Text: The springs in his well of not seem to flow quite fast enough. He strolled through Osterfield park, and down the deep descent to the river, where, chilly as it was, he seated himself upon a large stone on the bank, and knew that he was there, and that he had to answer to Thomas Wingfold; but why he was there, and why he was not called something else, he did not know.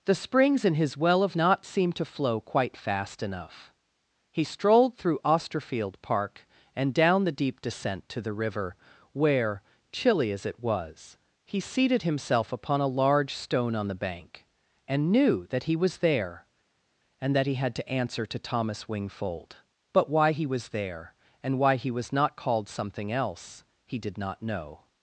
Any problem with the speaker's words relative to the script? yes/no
no